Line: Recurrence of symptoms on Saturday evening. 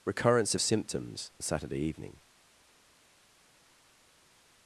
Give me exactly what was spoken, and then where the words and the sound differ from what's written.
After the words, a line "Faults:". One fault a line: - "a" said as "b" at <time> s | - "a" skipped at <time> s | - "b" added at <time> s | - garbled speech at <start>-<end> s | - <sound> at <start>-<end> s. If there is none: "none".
Recurrence of symptoms Saturday evening.
Faults:
- "on" skipped at 1.3 s